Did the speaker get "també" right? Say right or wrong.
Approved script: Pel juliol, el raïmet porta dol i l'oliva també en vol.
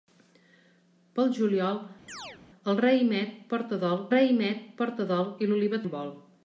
wrong